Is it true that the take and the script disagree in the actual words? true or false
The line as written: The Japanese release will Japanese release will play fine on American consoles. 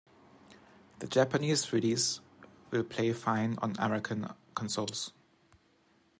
true